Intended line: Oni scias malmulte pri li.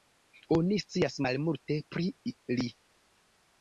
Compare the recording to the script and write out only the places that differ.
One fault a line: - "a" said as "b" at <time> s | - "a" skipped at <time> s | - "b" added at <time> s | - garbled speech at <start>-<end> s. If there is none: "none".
none